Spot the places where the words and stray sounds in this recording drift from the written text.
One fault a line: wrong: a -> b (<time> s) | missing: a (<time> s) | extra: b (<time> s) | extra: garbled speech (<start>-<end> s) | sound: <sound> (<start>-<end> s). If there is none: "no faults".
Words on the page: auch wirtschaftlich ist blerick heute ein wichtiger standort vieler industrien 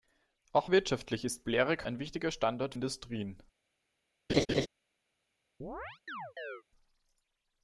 missing: heute (1.9 s)
missing: vieler (2.8 s)
sound: laugh (4.3-4.7 s)
sound: chirp (5.6-6.6 s)